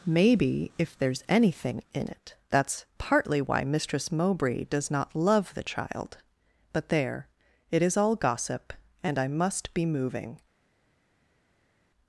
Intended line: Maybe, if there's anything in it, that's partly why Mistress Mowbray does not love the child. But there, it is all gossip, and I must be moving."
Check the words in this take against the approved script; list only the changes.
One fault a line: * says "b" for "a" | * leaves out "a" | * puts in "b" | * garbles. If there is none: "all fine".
all fine